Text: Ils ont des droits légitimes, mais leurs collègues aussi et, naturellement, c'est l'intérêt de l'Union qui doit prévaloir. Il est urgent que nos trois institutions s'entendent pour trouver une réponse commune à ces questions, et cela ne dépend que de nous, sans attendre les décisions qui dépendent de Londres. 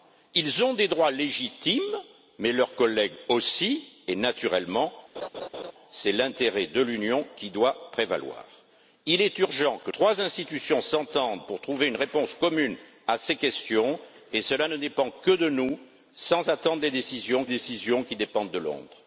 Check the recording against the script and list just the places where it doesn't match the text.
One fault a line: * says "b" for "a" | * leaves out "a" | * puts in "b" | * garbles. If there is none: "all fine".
* leaves out "nos"
* puts in "décisions"